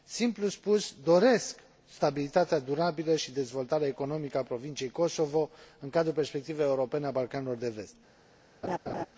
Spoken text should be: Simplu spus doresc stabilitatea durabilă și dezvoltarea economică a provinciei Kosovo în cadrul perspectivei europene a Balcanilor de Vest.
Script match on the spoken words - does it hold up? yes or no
yes